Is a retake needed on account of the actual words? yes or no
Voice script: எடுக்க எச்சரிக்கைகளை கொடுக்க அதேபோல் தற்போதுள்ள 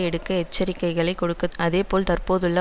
no